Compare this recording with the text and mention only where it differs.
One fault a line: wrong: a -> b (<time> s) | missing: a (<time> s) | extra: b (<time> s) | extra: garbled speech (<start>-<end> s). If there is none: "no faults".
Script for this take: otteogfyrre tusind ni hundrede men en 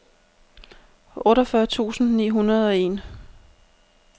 wrong: men -> og (2.7 s)